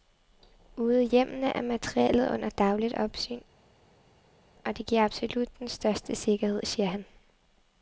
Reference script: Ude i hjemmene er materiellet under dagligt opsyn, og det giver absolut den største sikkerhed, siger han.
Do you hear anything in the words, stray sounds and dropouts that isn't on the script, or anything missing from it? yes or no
no